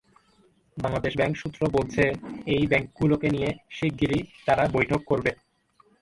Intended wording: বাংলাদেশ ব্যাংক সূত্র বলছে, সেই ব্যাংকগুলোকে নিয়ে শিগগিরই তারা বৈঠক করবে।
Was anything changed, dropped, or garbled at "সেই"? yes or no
yes